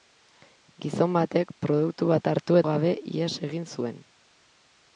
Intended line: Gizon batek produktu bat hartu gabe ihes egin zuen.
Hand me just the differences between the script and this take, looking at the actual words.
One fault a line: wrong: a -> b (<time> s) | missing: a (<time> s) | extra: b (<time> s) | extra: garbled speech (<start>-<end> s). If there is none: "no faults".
no faults